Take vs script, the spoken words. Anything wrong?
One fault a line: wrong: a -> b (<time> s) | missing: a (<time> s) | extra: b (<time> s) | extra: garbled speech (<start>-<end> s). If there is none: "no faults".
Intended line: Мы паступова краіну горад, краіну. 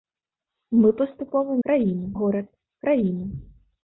no faults